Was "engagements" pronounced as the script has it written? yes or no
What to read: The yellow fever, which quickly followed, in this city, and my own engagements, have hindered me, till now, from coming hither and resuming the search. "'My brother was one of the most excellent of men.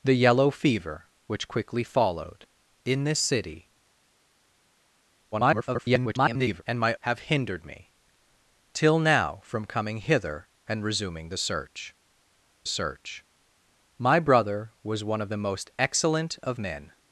no